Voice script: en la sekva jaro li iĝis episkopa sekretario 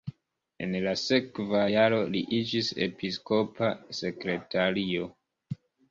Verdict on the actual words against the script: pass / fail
pass